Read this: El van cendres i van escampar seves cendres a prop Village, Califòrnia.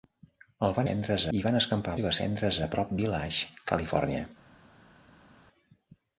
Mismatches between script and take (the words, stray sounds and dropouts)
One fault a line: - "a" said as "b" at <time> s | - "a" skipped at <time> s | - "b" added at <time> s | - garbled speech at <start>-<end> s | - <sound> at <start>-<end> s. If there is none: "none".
none